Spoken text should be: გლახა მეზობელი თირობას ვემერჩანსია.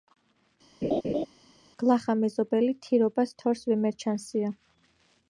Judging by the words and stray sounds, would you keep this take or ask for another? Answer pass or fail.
fail